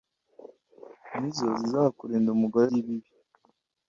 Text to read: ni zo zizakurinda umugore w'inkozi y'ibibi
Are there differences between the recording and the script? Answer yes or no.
yes